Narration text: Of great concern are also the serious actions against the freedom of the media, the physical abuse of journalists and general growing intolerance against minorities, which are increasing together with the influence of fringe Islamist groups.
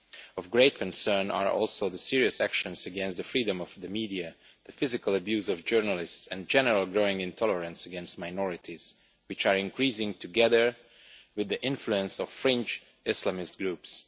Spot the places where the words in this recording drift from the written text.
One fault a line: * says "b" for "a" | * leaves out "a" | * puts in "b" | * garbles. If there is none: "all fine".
all fine